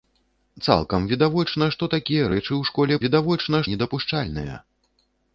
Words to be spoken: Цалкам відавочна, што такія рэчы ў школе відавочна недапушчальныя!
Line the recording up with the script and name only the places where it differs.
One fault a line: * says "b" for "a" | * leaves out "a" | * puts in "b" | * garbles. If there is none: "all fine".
all fine